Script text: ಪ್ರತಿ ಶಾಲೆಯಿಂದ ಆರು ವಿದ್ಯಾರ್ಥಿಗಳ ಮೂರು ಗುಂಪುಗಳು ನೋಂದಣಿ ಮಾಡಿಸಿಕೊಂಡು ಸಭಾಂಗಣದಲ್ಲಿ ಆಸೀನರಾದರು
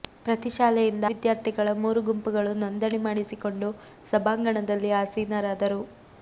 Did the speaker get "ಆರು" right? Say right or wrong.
wrong